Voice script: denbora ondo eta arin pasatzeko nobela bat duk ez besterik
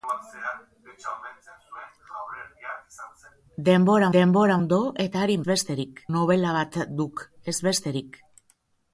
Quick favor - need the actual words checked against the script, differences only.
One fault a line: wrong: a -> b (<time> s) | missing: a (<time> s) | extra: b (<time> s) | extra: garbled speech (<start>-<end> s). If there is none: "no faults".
extra: denbora (4.1 s)
wrong: pasatzeko -> besterik (5.5 s)